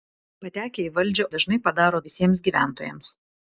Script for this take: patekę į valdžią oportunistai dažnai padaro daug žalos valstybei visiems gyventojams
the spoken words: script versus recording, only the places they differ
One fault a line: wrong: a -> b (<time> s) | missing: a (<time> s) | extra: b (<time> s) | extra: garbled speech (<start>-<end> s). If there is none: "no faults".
missing: oportunistai (1.3 s)
missing: daug žalos valstybei (2.0 s)